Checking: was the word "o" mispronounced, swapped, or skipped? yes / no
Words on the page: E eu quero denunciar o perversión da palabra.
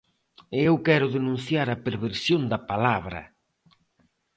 yes